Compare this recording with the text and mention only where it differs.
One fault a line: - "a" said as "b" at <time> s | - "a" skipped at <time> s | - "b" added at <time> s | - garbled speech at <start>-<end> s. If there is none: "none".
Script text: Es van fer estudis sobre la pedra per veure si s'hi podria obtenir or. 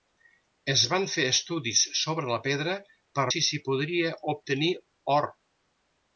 - "veure" skipped at 3.3 s